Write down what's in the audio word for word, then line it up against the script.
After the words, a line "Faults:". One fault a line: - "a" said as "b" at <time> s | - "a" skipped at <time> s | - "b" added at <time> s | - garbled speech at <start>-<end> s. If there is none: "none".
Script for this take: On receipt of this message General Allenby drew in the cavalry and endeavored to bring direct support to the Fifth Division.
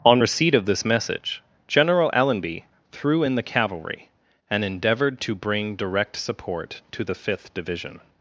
On receipt of this message General Allenby threw in the cavalry and endeavored to bring direct support to the Fifth Division.
Faults:
- "drew" said as "threw" at 2.9 s